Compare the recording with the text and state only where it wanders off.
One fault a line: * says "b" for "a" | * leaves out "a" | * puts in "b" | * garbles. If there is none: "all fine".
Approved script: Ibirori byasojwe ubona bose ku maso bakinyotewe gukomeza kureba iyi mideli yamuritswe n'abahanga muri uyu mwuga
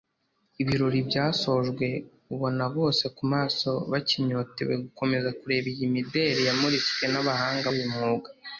* leaves out "muri"